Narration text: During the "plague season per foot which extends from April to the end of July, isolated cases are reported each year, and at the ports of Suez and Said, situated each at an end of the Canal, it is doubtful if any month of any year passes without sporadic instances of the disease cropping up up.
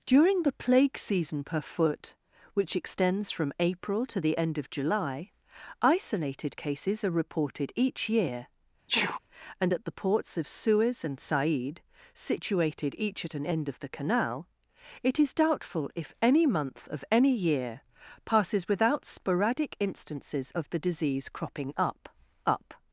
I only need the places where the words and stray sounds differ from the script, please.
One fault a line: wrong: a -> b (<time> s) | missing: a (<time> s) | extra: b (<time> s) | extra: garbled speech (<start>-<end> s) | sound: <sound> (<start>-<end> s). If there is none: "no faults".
sound: sneeze (8.9-9.2 s)